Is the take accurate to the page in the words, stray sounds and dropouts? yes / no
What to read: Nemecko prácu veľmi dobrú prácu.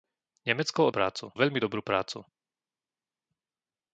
yes